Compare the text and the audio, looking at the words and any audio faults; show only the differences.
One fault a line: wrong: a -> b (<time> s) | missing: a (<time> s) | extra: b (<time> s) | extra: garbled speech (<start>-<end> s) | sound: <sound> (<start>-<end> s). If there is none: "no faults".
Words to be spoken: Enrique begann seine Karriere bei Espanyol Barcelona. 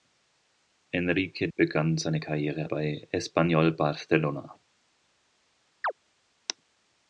sound: chirp (5.8-5.9 s)